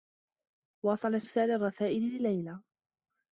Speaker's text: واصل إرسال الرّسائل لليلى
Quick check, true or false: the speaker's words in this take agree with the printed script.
true